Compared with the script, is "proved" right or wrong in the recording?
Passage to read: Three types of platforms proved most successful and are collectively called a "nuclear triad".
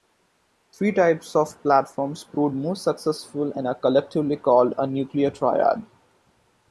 right